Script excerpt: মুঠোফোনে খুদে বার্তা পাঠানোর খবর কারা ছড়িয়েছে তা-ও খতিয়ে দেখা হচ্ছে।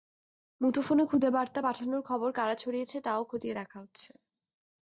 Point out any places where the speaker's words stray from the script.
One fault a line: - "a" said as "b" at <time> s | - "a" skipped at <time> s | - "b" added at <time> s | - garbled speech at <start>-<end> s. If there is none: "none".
none